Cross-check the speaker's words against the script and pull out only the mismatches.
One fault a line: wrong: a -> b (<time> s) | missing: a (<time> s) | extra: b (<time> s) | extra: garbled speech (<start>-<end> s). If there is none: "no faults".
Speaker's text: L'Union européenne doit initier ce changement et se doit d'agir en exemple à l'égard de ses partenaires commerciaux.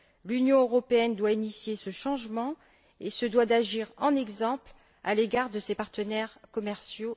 no faults